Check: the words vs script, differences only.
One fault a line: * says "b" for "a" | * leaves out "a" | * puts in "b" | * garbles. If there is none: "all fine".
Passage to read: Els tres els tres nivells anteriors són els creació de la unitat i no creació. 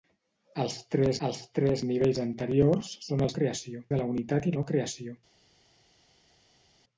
all fine